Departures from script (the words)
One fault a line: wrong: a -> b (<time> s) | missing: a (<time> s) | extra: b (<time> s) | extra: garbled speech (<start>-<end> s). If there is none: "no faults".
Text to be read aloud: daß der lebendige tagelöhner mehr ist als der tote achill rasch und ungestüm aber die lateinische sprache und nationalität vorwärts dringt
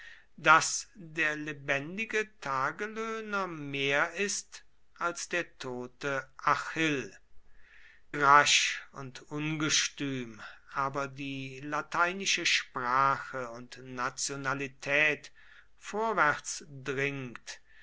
no faults